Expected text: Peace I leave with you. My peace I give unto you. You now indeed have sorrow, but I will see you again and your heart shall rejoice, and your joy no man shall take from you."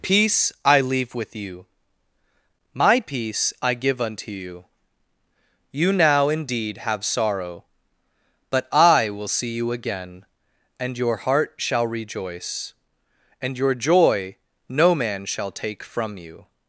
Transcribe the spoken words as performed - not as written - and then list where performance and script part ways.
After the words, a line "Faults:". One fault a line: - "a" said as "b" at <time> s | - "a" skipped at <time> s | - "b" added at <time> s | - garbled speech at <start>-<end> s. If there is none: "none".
Peace I leave with you. My peace I give unto you. You now indeed have sorrow, but I will see you again and your heart shall rejoice, and your joy no man shall take from you."
Faults:
none